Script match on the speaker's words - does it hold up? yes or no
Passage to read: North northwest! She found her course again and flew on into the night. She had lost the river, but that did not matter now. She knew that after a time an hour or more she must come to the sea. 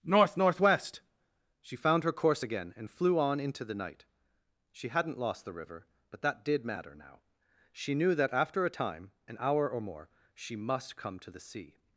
no